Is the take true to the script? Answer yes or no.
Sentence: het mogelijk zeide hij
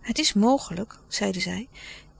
no